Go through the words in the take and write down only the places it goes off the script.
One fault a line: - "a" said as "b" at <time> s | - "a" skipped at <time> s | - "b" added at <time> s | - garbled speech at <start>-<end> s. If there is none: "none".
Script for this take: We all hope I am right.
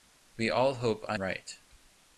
- "am" skipped at 1.2 s